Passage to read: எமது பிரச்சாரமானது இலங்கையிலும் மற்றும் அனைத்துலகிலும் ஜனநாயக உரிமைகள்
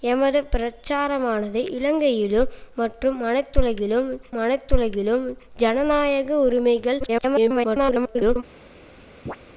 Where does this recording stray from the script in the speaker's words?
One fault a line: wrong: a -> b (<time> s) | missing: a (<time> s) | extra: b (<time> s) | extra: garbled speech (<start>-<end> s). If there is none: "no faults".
extra: அனைத்துலகிலும் (4.4 s)
extra: garbled speech (7.0-8.4 s)